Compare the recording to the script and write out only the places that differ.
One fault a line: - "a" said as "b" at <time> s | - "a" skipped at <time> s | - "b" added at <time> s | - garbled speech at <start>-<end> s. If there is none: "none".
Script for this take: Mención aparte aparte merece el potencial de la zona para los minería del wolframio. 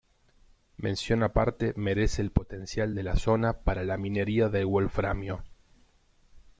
- "aparte" skipped at 1.7 s
- "los" said as "la" at 3.8 s